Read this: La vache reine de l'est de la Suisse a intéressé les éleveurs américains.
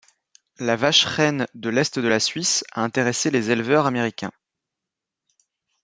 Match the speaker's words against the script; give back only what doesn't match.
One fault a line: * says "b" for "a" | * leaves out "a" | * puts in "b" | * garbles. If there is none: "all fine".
all fine